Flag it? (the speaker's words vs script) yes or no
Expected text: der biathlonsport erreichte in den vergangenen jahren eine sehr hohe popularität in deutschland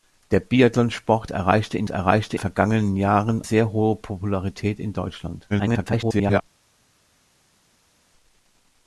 yes